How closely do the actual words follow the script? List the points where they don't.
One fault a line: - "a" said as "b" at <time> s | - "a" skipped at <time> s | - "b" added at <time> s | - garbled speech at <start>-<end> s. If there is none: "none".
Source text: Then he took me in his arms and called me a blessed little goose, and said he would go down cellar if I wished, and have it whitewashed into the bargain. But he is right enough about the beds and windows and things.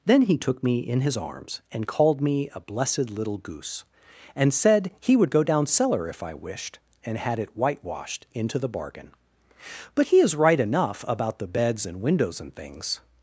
- "have" said as "had" at 7.2 s